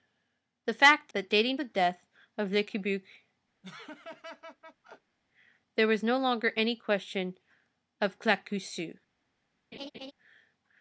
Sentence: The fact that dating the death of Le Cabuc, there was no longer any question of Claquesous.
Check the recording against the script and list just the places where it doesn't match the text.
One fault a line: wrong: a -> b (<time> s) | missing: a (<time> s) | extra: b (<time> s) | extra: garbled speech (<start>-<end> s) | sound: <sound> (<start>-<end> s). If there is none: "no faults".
sound: laugh (3.6-5.2 s)
sound: laugh (9.7-10.1 s)